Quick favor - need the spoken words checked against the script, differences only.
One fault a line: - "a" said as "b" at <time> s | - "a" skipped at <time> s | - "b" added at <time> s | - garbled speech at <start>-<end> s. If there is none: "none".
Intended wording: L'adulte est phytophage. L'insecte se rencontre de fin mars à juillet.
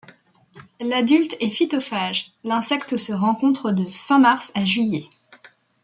none